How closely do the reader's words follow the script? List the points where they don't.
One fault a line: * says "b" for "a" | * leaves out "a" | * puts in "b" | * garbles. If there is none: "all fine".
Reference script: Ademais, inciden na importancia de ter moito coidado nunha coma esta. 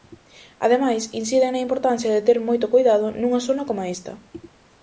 * puts in "zona"